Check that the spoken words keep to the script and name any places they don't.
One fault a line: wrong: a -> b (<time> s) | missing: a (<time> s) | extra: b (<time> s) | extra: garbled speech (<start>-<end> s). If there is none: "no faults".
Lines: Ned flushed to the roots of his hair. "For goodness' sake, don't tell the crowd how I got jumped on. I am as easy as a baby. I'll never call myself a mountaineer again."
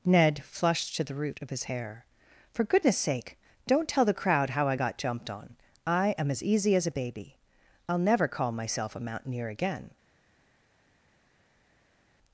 wrong: roots -> root (1.1 s)